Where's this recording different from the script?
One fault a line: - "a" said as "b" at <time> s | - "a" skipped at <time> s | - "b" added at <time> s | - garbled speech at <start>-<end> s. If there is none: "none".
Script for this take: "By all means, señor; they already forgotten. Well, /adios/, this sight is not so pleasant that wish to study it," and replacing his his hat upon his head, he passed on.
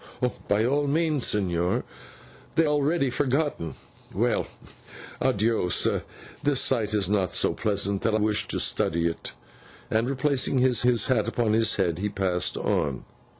none